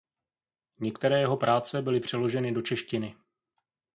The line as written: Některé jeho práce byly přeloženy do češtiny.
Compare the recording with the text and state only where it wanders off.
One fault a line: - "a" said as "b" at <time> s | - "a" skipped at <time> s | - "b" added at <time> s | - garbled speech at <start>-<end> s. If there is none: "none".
none